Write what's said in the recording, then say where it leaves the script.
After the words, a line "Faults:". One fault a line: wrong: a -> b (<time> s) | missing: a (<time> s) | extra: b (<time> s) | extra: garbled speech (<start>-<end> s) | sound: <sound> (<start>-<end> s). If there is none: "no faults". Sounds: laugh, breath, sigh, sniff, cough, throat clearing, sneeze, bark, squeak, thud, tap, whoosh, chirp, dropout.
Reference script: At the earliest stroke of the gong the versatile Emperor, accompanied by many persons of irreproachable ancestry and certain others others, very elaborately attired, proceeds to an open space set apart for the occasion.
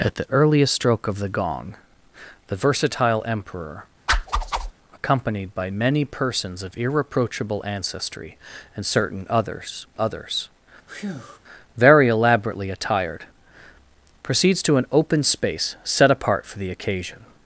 At the earliest stroke of the gong the versatile Emperor, accompanied by many persons of irreproachable ancestry and certain others others, very elaborately attired, proceeds to an open space set apart for the occasion.
Faults:
sound: whoosh (4.1-4.7 s)
sound: breath (10.9-11.4 s)